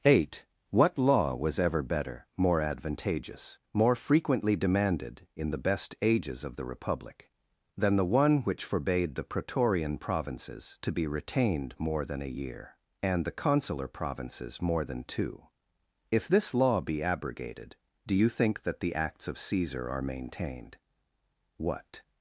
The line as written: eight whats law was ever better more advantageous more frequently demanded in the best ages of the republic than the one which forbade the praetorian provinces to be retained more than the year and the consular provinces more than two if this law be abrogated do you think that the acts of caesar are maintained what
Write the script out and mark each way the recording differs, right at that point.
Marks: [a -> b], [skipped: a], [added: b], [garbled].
eight [whats -> what] law was ever better more advantageous more frequently demanded in the best ages of the republic than the one which forbade the praetorian provinces to be retained more than [the -> a] year and the consular provinces more than two if this law be abrogated do you think that the acts of caesar are maintained what